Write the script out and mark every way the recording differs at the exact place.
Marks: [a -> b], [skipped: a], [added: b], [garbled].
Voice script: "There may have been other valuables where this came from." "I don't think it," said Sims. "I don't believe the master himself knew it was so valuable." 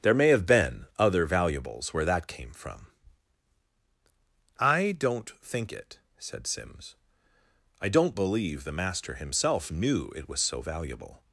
"There may have been other valuables where [this -> that] came from." "I don't think it," said Sims. "I don't believe the master himself knew it was so valuable."